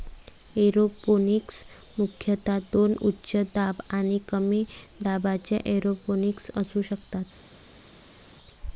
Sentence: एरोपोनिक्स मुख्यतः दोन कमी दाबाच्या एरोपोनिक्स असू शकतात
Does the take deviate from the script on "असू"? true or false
false